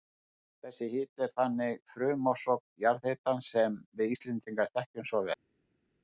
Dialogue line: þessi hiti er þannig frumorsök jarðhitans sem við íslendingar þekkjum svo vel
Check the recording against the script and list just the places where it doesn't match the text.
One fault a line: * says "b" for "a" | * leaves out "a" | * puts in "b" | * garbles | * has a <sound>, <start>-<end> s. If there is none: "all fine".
all fine